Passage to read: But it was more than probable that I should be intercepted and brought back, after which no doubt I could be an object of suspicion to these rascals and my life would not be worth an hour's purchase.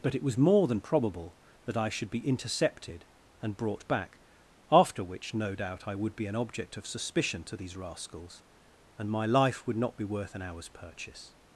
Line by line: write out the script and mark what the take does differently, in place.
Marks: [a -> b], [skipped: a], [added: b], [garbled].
But it was more than probable that I should be intercepted and brought back, after which no doubt I [could -> would] be an object of suspicion to these rascals and my life would not be worth an hour's purchase.